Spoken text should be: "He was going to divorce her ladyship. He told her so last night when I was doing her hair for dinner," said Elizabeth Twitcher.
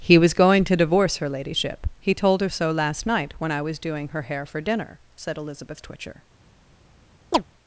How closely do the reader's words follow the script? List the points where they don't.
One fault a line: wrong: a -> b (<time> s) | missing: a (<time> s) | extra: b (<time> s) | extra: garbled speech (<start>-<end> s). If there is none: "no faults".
no faults